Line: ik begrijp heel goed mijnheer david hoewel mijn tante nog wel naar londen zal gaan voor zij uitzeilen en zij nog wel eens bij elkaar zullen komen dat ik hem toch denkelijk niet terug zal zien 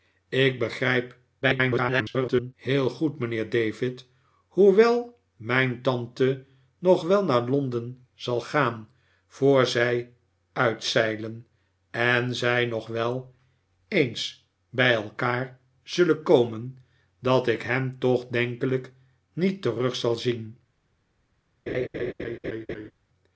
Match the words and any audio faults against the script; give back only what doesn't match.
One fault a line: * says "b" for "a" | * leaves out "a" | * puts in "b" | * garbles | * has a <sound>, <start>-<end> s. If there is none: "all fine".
* garbles
* has a laugh, 21.7-22.9 s